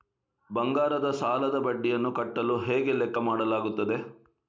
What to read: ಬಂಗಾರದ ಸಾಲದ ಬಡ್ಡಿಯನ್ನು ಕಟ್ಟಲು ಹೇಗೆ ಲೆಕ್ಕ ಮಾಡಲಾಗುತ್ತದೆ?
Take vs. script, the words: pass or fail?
pass